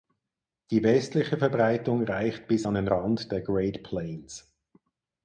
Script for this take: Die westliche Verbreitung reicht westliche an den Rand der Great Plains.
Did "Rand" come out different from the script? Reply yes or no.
no